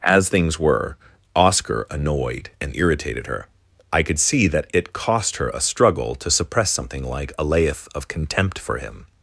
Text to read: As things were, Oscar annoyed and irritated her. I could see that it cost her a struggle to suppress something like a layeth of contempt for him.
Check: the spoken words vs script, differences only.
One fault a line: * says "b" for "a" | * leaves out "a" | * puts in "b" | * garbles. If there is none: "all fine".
all fine